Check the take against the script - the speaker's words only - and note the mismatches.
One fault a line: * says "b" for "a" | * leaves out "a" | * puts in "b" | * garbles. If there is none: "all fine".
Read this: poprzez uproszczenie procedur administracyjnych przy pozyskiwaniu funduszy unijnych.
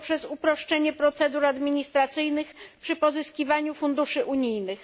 all fine